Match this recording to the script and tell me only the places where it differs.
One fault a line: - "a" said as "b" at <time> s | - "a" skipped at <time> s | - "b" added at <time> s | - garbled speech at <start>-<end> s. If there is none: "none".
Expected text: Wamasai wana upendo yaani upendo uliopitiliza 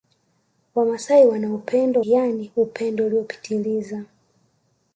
none